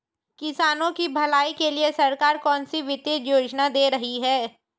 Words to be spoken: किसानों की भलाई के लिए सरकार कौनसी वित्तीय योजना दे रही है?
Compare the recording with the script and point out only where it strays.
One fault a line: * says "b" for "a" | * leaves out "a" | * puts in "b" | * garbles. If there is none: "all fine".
all fine